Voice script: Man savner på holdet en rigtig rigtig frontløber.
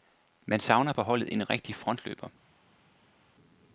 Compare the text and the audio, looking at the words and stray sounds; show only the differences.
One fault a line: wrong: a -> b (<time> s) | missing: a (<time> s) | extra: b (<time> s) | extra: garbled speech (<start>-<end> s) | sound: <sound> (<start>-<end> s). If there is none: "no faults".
missing: rigtig (1.8 s)